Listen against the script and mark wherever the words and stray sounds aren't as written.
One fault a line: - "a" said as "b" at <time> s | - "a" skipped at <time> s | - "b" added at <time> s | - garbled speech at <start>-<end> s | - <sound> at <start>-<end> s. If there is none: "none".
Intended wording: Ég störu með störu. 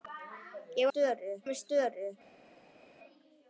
none